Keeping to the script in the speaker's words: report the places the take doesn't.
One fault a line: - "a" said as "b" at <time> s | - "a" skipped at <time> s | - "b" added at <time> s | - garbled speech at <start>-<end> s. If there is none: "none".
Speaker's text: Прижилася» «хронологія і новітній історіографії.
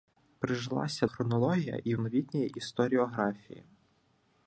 none